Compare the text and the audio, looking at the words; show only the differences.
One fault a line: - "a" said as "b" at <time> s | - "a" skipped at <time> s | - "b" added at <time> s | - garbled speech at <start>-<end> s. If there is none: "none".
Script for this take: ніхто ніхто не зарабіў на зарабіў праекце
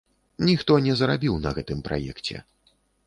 - "ніхто" skipped at 0.8 s
- "зарабіў" said as "гэтым" at 1.6 s